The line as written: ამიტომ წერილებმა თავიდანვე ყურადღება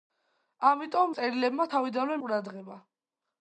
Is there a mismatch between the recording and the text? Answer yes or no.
no